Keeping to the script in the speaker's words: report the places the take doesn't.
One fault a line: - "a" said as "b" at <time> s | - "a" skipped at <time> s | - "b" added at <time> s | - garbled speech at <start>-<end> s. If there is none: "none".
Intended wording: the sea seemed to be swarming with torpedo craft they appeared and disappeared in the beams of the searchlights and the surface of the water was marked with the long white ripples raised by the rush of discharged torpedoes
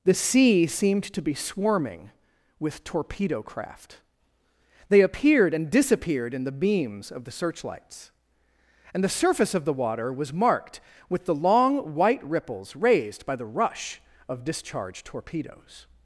none